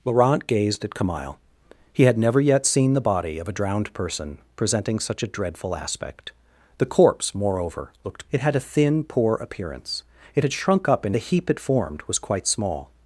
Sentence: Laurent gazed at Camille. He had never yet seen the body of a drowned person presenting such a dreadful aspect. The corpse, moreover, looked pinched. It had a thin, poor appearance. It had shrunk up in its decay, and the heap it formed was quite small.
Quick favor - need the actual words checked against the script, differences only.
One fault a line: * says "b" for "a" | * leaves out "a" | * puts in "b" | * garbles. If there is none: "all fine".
* leaves out "pinched"
* leaves out "its decay and"